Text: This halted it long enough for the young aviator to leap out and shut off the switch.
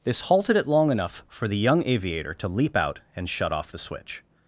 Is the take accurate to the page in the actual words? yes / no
yes